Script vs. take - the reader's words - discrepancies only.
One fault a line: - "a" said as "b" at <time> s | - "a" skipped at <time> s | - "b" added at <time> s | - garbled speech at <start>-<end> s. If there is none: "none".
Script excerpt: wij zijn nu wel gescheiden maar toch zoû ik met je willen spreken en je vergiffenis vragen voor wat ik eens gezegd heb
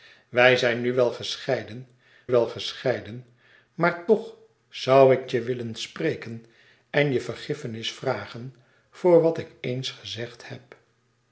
- "wel gescheiden" added at 2.3 s
- "met" skipped at 5.3 s